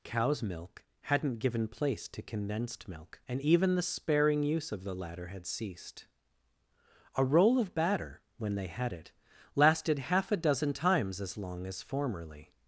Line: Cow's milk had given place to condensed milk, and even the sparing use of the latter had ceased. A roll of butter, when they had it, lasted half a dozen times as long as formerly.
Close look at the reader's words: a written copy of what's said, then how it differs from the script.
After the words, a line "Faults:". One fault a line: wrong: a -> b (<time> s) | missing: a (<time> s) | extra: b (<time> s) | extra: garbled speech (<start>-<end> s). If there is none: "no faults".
Cow's milk hadn't given place to condensed milk, and even the sparing use of the latter had ceased. A roll of batter, when they had it, lasted half a dozen times as long as formerly.
Faults:
wrong: had -> hadn't (1.0 s)
wrong: butter -> batter (7.7 s)